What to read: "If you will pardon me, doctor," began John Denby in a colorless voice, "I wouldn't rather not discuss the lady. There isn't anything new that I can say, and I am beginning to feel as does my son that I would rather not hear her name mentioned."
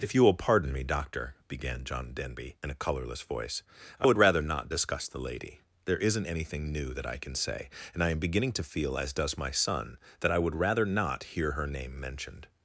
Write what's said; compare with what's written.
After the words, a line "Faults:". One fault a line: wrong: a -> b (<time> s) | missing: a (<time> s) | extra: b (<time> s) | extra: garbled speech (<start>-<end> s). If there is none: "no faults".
"If you will pardon me, doctor," began John Denby in a colorless voice, "I would rather not discuss the lady. There isn't anything new that I can say, and I am beginning to feel as does my son that I would rather not hear her name mentioned."
Faults:
wrong: wouldn't -> would (4.0 s)